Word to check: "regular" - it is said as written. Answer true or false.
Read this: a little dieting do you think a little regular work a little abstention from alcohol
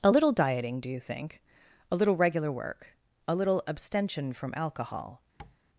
true